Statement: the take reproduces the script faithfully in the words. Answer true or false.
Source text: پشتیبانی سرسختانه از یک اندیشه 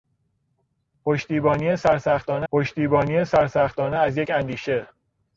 false